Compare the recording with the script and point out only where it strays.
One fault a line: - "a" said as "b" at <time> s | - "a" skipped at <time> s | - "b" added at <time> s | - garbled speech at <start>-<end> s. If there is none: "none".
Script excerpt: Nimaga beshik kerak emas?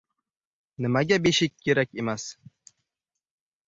none